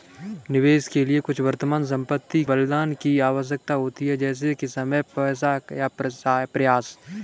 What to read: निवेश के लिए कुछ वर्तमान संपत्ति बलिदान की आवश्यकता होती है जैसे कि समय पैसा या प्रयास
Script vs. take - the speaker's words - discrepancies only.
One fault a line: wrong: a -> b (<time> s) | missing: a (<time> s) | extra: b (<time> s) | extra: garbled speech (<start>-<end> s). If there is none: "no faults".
no faults